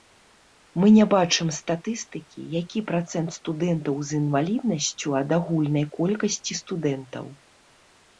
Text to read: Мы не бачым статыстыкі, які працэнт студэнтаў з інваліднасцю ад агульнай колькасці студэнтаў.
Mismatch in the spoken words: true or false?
false